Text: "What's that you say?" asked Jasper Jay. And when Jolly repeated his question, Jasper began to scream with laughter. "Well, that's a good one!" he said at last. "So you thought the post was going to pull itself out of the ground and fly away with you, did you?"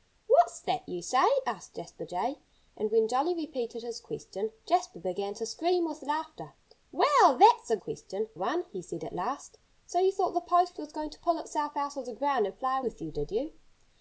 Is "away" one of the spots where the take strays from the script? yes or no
yes